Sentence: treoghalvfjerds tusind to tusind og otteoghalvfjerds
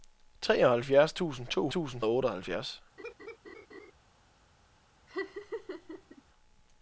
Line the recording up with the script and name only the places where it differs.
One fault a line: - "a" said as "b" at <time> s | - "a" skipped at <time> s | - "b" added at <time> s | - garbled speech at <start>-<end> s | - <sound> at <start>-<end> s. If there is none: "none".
- laugh at 3.0-3.9 s
- laugh at 5.1-6.2 s